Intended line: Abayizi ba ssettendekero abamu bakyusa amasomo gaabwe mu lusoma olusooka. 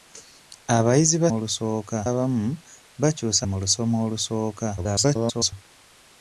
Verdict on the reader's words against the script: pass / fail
fail